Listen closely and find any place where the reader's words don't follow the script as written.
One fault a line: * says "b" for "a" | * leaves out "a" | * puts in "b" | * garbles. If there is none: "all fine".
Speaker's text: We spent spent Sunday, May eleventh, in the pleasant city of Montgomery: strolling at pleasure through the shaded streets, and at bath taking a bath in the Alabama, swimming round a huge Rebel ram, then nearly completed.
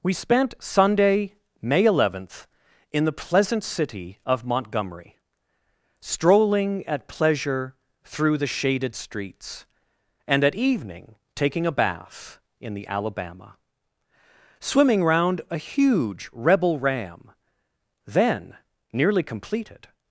* leaves out "spent"
* says "evening" for "bath"